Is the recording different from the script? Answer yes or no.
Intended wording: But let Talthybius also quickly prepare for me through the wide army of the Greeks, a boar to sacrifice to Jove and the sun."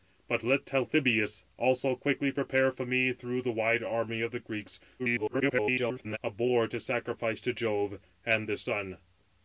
yes